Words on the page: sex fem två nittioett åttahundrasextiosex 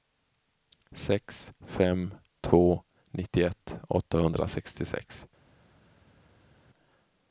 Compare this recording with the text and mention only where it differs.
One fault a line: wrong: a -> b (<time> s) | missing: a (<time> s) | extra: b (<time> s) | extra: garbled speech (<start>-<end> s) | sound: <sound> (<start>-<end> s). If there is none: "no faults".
no faults